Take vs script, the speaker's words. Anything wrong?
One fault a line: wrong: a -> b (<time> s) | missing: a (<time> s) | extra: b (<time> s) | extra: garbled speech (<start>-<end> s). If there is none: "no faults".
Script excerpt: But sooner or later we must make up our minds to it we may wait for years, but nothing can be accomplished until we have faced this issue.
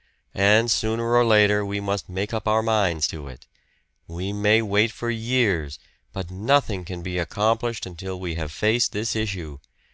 wrong: But -> And (0.3 s)